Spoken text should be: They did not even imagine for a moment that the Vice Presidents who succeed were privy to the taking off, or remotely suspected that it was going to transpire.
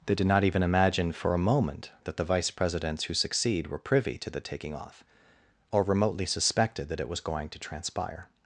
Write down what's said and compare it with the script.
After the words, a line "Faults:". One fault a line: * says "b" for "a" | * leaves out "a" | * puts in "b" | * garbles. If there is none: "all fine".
They did not even imagine for a moment that the Vice Presidents who succeed were privy to the taking off, or remotely suspected that it was going to transpire.
Faults:
all fine